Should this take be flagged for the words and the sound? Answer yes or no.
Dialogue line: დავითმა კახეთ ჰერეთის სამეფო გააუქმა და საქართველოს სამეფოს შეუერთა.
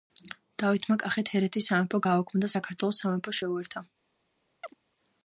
yes